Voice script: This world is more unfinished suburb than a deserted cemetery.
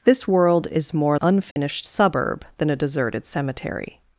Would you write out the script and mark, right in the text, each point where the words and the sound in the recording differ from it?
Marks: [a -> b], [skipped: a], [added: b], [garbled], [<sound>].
This world is more unfinished [dropout] suburb than a deserted cemetery.